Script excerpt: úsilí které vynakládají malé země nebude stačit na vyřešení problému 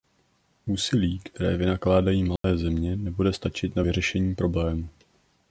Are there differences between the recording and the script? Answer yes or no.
no